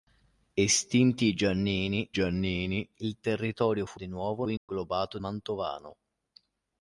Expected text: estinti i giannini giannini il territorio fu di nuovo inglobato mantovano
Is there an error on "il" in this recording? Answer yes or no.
no